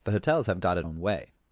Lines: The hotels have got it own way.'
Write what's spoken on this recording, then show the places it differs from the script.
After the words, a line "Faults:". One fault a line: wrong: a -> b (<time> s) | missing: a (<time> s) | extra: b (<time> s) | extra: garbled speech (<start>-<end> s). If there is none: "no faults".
The hotels have got it own way.'
Faults:
no faults